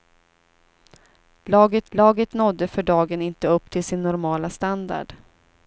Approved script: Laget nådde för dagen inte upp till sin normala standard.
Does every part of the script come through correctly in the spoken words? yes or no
no